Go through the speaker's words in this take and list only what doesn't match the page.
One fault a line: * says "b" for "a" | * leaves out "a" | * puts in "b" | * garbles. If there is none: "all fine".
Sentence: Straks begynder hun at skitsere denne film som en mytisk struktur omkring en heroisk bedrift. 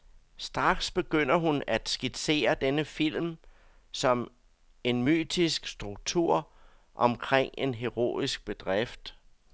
all fine